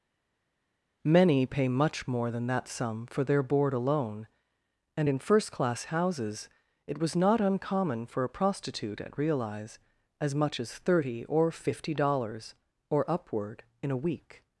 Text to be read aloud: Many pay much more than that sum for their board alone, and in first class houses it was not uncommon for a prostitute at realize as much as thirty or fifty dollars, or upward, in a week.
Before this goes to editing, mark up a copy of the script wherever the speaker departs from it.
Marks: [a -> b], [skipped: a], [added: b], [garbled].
Many pay much more than that sum for their board alone, and in first class houses it was not uncommon for a prostitute at realize as much as thirty or fifty dollars, or upward, in a week.